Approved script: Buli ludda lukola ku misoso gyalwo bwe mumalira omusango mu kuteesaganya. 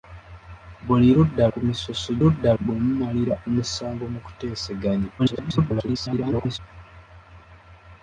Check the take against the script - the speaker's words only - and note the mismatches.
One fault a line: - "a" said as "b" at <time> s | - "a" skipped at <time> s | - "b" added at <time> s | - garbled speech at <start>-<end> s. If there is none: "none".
- "lukola" skipped at 1.4 s
- "gyalwo" said as "ludda" at 2.2 s
- garbled speech at 5.2-6.6 s